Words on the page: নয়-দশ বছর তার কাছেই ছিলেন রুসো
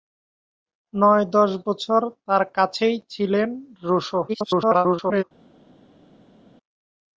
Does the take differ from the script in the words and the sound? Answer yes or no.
yes